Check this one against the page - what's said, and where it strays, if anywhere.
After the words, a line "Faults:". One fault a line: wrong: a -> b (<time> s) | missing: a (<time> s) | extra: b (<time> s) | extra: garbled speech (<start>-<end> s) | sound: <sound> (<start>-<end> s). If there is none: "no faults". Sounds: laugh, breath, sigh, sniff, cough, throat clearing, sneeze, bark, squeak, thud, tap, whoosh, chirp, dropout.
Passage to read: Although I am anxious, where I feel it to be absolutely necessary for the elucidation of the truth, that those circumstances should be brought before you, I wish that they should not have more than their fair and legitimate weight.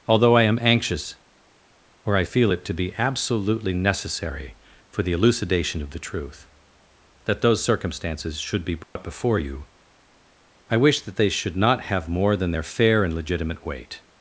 Although I am anxious, or I feel it to be absolutely necessary for the elucidation of the truth, that those circumstances should be brought before you, I wish that they should not have more than their fair and legitimate weight.
Faults:
wrong: where -> or (2.0 s)
sound: dropout (8.8-9.0 s)